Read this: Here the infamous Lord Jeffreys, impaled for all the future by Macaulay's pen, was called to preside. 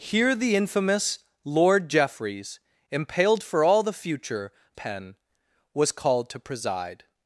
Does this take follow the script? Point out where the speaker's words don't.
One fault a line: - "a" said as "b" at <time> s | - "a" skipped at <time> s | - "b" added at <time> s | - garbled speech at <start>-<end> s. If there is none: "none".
- "by Macaulay's" skipped at 4.5 s